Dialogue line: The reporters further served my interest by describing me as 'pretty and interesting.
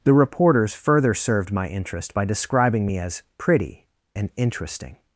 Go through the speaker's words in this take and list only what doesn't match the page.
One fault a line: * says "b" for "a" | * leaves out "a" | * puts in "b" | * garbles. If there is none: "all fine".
all fine